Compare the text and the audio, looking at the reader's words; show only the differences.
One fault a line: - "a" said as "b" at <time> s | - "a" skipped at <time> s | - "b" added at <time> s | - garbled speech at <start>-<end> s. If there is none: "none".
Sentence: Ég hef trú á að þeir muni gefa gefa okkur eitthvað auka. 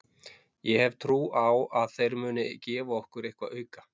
- "gefa" skipped at 3.0 s